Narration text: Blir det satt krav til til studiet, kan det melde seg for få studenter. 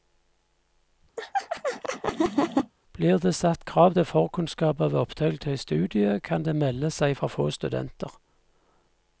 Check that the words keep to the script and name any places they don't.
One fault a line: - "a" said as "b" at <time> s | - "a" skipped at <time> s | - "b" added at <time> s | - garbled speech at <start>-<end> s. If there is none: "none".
- "forkunnskaper ved opptak" added at 4.0 s